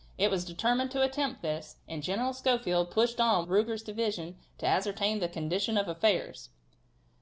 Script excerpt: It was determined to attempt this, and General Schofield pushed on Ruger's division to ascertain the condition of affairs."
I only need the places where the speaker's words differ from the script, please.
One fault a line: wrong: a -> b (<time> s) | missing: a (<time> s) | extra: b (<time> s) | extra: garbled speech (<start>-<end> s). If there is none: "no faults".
no faults